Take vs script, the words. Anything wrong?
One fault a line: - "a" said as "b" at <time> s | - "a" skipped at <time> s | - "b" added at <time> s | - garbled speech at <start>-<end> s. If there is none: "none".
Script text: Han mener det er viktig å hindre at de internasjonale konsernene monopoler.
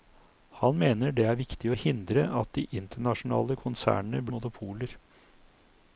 none